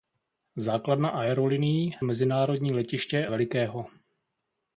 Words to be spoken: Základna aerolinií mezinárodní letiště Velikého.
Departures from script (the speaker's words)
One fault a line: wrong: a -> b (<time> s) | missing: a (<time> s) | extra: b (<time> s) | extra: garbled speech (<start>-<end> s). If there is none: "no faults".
no faults